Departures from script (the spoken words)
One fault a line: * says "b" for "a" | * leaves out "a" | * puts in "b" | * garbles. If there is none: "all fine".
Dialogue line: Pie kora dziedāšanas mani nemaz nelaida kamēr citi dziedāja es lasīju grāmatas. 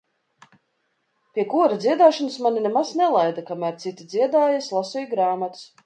all fine